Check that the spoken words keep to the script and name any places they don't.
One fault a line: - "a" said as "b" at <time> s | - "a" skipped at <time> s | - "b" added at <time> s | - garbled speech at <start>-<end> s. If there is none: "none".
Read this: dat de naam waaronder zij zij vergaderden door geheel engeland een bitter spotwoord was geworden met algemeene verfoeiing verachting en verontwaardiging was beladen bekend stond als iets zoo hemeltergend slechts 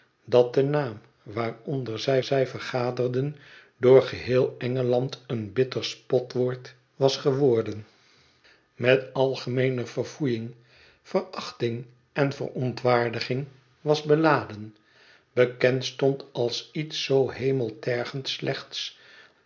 none